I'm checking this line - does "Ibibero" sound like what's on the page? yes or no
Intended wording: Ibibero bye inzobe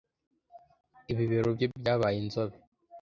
yes